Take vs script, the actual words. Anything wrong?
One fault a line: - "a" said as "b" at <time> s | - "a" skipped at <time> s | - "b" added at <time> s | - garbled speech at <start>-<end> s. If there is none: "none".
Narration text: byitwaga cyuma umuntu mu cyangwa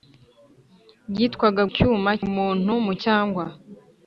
none